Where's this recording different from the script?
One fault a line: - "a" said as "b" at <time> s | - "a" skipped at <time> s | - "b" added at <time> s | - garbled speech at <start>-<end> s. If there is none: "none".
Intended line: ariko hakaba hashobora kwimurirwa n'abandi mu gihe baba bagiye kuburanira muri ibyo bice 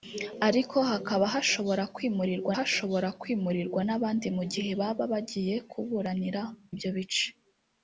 - "hashobora kwimurirwa" added at 2.6 s
- "muri" skipped at 6.4 s